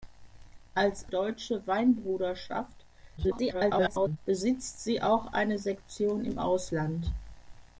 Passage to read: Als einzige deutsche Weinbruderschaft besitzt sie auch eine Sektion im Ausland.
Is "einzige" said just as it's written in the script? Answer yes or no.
no